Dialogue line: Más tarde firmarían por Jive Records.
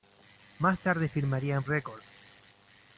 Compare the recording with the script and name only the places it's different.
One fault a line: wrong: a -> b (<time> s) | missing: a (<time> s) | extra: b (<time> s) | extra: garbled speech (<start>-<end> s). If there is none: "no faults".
missing: por Jive (1.6 s)